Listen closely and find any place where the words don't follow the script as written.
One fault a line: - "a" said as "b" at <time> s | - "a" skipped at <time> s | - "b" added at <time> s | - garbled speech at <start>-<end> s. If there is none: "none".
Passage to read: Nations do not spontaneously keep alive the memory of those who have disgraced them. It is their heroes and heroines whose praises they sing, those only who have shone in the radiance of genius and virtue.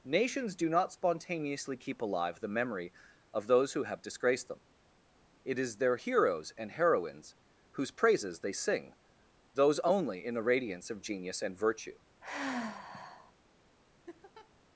- "who have shone" skipped at 10.2 s